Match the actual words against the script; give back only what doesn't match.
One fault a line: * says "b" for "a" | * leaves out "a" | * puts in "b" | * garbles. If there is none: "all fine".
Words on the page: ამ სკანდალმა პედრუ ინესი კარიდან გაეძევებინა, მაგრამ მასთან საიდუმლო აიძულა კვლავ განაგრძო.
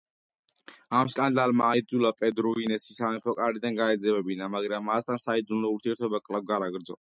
* puts in "აიძულა"
* puts in "სამეფო"
* says "ურთიერთობა" for "აიძულა"